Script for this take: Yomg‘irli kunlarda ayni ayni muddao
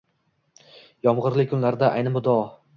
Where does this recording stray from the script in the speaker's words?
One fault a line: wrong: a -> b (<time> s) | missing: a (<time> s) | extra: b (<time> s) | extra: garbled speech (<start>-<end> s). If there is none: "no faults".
missing: ayni (2.2 s)